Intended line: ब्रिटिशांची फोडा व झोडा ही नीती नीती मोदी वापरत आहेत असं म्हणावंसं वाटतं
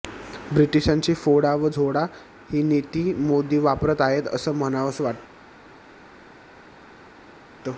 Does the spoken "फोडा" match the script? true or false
true